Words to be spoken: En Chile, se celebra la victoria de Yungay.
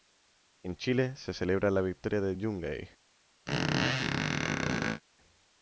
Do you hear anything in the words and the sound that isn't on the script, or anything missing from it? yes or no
yes